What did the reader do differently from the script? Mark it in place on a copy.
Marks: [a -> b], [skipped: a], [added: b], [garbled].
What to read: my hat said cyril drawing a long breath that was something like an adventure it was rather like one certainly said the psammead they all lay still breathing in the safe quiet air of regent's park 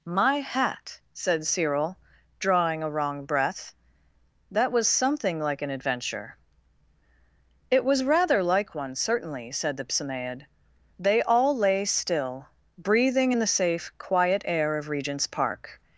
my hat said cyril drawing a [long -> wrong] breath that was something like an adventure it was rather like one certainly said the psammead they all lay still breathing in the safe quiet air of regent's park